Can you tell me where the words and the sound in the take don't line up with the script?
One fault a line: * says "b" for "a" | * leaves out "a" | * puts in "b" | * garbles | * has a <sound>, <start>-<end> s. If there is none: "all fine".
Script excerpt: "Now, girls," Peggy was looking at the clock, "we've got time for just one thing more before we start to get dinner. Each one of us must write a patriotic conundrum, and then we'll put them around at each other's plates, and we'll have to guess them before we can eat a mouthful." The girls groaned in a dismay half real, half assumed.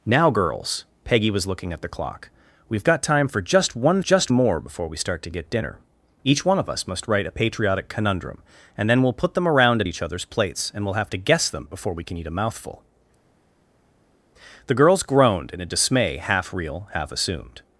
* says "just" for "thing"